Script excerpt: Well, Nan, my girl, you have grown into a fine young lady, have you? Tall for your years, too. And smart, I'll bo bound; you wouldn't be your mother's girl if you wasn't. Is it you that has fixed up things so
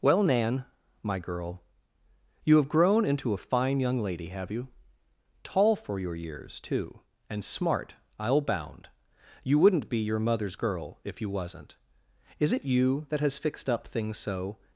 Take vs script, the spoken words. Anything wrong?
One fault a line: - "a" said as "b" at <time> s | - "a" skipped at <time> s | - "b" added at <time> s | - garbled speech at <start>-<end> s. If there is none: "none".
- "bo" skipped at 8.4 s